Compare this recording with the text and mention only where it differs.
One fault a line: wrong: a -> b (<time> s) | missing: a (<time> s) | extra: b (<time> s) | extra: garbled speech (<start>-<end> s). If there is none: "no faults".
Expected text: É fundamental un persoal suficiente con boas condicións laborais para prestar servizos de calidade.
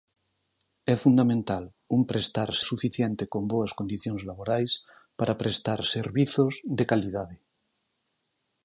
wrong: persoal -> prestar (2.1 s)